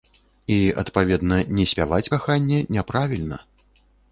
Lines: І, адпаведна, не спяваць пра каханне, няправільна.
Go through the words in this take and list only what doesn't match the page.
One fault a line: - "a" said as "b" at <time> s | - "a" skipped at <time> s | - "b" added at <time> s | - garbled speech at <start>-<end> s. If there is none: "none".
- "пра" skipped at 2.1 s